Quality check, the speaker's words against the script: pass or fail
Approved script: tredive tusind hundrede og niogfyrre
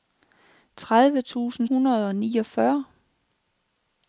pass